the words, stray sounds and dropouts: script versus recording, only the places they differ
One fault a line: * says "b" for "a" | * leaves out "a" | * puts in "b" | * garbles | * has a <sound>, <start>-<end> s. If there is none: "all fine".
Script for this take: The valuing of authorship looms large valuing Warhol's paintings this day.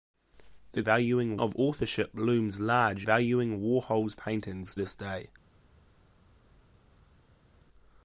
all fine